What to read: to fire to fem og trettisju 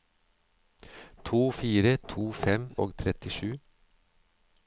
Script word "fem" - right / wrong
right